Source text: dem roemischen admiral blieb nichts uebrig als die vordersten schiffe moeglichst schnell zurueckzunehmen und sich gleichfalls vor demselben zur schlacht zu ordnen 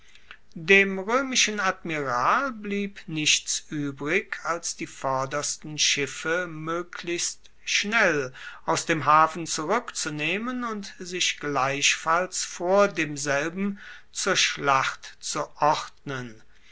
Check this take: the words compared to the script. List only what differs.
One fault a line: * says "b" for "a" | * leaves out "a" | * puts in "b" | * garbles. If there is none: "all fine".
* puts in "aus dem hafen"